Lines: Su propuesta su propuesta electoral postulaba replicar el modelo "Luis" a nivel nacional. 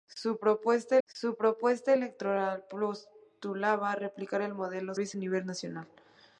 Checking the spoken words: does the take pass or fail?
pass